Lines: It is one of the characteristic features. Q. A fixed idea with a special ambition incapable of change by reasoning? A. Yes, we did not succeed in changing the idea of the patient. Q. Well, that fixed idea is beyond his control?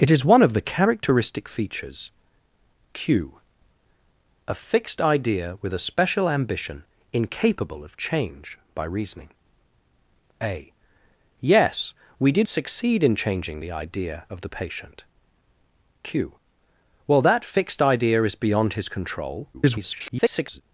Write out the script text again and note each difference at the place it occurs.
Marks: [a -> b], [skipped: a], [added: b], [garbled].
It is one of the characteristic features. Q. A fixed idea with a special ambition incapable of change by reasoning? A. Yes, we did [skipped: not] succeed in changing the idea of the patient. Q. Well, that fixed idea is beyond his control? [garbled]